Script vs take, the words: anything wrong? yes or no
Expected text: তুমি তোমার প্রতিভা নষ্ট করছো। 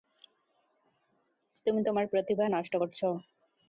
no